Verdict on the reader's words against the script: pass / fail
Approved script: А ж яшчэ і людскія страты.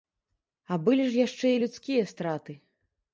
fail